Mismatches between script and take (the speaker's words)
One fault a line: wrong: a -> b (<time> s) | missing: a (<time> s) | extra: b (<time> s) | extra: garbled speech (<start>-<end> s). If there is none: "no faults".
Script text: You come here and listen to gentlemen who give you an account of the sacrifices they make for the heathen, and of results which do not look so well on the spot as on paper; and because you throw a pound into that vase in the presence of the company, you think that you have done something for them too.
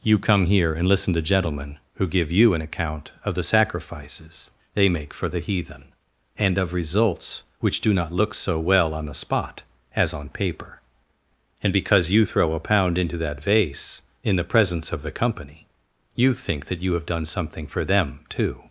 no faults